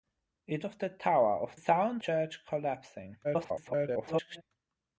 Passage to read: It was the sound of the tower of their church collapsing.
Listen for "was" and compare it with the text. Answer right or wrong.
wrong